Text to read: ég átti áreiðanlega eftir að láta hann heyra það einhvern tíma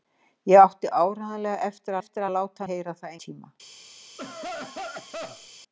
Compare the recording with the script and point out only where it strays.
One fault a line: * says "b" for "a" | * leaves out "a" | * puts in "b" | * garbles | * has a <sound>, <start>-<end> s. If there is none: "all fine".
* puts in "eftir"
* leaves out "hann"
* leaves out "einhvern"
* has a cough, 4.2-5.5 s